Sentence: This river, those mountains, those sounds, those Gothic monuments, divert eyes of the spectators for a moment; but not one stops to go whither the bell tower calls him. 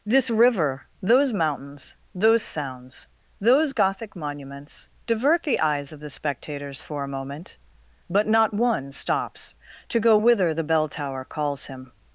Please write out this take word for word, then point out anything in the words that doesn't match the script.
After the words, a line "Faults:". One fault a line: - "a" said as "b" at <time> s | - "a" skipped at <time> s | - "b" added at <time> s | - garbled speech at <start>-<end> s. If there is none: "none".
This river, those mountains, those sounds, those Gothic monuments, divert the eyes of the spectators for a moment; but not one stops to go whither the bell tower calls him.
Faults:
- "the" added at 5.4 s